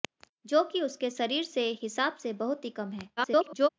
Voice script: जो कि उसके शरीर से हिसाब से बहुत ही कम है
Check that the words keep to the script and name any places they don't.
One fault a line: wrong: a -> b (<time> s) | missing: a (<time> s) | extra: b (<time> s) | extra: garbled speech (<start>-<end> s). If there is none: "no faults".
extra: garbled speech (3.2-3.7 s)